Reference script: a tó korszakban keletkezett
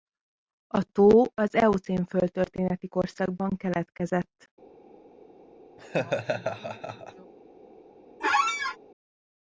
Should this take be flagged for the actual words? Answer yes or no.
yes